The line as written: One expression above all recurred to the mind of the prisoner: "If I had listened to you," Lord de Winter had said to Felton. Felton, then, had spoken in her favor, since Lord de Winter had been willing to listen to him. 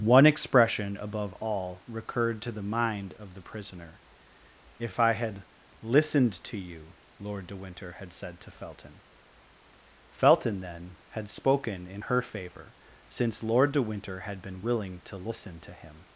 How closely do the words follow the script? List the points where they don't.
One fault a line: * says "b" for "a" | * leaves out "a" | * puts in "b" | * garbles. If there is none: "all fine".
all fine